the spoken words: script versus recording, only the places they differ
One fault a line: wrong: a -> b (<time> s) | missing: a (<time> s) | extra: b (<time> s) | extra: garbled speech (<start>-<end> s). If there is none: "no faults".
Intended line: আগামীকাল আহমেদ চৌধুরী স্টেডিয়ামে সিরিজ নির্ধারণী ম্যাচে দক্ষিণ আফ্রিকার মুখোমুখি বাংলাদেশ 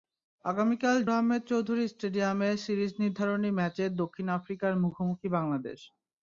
no faults